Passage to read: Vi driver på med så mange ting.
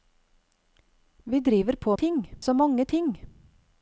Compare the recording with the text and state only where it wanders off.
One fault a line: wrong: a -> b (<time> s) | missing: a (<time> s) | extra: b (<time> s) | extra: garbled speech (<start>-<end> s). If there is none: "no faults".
wrong: med -> ting (1.9 s)